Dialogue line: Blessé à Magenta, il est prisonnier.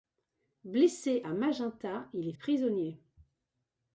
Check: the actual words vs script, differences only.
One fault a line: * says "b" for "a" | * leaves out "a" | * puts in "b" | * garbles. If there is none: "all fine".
all fine